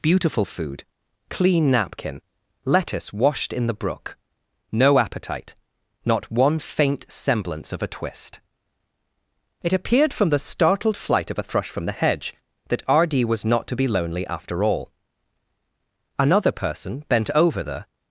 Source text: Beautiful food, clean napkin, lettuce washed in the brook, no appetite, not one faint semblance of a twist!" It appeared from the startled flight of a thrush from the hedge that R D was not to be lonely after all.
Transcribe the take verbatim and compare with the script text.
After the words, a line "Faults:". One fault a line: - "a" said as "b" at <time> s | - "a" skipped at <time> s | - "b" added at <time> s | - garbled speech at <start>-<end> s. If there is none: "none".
Beautiful food, clean napkin, lettuce washed in the brook, no appetite, not one faint semblance of a twist!" It appeared from the startled flight of a thrush from the hedge that R D was not to be lonely after all. Another person bent over the
Faults:
- "Another person bent over the" added at 16.2 s